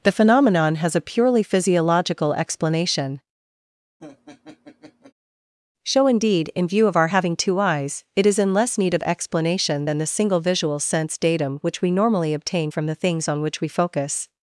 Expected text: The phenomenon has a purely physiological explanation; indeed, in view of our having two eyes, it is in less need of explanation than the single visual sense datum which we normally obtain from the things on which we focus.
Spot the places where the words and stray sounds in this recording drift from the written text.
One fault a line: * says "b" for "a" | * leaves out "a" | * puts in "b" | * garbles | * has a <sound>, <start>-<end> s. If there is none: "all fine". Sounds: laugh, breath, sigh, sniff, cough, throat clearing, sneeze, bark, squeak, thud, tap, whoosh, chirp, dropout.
* has a laugh, 4.0-5.1 s
* puts in "show"